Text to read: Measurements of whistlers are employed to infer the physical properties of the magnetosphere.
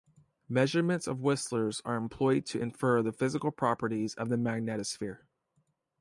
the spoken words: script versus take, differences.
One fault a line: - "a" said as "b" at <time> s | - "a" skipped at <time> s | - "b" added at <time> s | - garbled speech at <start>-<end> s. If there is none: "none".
none